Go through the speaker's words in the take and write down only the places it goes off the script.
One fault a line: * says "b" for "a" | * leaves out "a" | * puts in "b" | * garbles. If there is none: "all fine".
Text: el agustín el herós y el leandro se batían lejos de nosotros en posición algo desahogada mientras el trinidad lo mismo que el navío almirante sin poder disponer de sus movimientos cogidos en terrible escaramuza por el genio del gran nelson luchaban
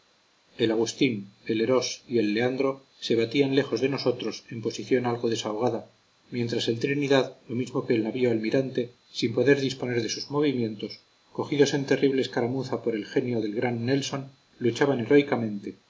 all fine